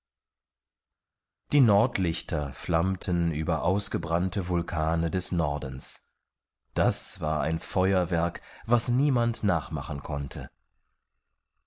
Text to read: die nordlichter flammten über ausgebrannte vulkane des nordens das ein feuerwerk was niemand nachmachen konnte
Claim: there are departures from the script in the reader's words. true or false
true